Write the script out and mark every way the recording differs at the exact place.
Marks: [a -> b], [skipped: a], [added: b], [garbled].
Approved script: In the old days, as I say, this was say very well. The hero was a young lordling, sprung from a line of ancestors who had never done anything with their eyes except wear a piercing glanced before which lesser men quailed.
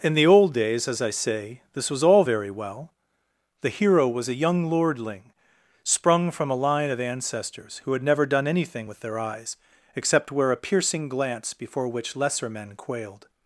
In the old days, as I say, this was [say -> all] very well. The hero was a young lordling, sprung from a line of ancestors who had never done anything with their eyes except wear a piercing [glanced -> glance] before which lesser men quailed.